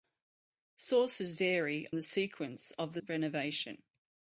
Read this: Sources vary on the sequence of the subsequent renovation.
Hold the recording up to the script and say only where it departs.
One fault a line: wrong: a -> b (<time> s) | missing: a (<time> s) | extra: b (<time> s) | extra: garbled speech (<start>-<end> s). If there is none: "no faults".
missing: on (1.9 s)
missing: subsequent (3.0 s)